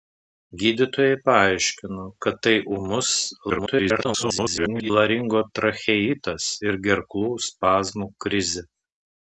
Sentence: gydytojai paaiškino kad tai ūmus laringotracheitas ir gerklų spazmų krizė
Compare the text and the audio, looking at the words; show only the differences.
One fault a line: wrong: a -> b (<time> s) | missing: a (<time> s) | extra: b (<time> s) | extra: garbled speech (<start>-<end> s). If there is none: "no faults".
extra: garbled speech (3.5-4.9 s)